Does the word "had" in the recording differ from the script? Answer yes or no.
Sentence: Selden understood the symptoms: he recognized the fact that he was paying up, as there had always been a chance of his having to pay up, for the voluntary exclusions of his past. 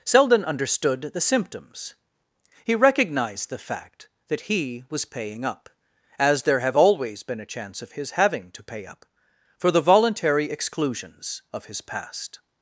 yes